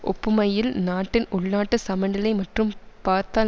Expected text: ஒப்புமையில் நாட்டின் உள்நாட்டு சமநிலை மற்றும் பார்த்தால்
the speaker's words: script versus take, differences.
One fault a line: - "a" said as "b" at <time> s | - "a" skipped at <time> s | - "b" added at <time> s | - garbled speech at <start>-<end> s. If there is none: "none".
none